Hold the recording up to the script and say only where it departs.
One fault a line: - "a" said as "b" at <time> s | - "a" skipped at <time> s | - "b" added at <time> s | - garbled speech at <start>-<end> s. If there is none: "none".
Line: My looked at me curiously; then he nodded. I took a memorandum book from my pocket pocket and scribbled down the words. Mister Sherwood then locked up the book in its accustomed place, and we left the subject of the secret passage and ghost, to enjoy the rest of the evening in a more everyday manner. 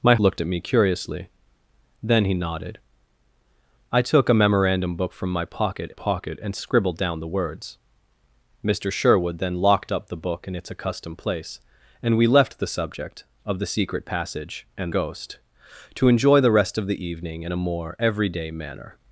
none